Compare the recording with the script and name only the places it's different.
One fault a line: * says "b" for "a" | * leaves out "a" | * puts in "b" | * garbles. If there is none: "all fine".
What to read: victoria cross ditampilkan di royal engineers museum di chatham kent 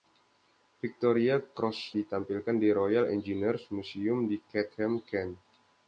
all fine